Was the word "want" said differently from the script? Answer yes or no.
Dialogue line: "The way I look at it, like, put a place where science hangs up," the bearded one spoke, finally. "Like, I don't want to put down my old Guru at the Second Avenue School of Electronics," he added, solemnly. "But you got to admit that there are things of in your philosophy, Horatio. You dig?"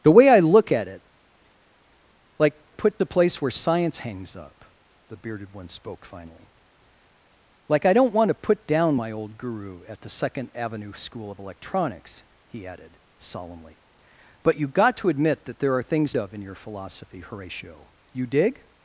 no